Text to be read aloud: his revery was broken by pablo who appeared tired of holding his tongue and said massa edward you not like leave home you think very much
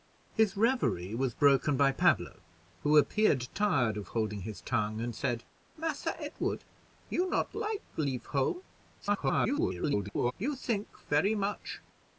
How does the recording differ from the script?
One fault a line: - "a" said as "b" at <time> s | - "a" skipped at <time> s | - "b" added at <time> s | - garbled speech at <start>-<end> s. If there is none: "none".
- garbled speech at 9.0-10.3 s